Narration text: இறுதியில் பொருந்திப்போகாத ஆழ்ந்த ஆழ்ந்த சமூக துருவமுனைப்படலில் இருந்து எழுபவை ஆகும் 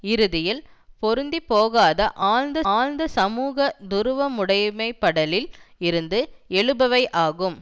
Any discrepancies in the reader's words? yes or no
no